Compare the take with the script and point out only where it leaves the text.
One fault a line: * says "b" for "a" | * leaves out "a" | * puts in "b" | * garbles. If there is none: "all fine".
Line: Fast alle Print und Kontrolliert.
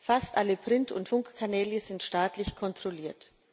* puts in "Funkkanäle sind staatlich"